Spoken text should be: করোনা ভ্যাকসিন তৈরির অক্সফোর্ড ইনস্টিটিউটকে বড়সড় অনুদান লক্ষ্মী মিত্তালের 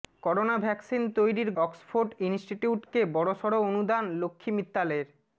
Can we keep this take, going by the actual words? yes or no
yes